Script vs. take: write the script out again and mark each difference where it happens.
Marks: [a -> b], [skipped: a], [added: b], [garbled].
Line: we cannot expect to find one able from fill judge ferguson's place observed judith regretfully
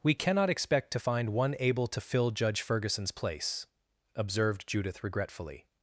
we cannot expect to find one able [from -> to] fill judge ferguson's place observed judith regretfully